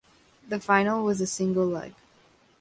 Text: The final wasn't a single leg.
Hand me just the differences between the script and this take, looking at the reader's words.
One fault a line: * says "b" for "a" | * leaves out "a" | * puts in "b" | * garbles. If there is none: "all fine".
* says "was" for "wasn't"